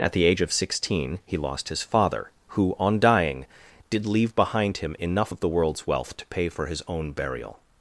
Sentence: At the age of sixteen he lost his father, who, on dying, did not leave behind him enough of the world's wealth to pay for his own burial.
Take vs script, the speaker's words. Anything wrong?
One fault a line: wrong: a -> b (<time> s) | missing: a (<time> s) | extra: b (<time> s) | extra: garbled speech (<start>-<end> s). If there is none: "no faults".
missing: not (4.1 s)